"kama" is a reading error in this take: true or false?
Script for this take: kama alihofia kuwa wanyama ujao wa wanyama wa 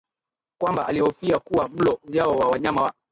true